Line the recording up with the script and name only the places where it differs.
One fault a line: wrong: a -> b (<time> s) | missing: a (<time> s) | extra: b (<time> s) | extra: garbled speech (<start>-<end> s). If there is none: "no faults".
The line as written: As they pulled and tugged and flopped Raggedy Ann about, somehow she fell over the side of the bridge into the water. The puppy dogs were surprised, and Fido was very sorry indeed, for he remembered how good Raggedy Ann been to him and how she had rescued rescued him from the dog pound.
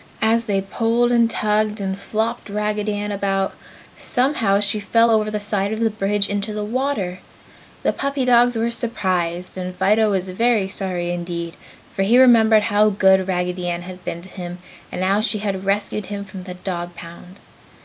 extra: had (13.8 s)
missing: rescued (16.1 s)